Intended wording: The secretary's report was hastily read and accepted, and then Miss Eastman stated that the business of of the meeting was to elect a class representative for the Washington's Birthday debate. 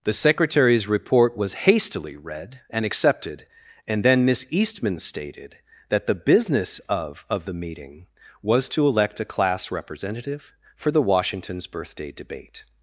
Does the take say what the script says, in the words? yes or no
yes